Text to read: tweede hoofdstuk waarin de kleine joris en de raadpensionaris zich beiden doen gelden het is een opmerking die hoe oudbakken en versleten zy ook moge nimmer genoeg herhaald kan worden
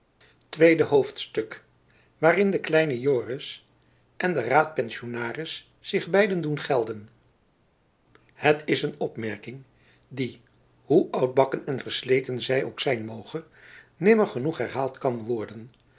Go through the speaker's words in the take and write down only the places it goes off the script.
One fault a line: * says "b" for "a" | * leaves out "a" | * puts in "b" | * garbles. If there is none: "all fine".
* puts in "zijn"